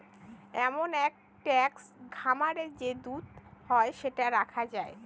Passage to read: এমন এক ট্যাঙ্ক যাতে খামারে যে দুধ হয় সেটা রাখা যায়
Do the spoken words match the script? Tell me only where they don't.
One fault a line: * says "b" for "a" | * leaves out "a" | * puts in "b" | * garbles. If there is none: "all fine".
* leaves out "যাতে"